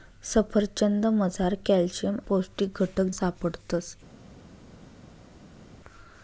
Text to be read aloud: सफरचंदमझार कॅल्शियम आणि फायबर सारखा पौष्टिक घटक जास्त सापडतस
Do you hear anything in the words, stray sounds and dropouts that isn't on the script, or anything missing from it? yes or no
yes